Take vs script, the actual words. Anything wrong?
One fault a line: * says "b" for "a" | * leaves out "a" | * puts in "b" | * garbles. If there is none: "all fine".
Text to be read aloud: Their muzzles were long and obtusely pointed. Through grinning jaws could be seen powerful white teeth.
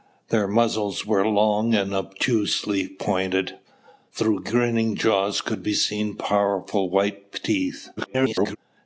* garbles